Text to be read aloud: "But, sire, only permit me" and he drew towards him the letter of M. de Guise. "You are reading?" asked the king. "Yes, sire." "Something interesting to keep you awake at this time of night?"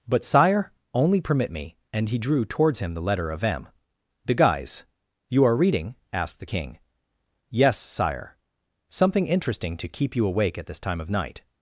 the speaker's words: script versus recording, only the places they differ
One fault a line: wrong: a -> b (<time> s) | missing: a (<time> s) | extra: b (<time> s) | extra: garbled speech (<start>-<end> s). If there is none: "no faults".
no faults